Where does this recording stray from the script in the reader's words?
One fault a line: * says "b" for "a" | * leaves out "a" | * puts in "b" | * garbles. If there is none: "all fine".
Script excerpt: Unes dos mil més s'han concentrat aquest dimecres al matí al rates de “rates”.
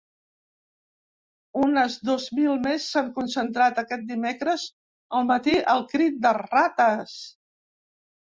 * says "crit" for "rates"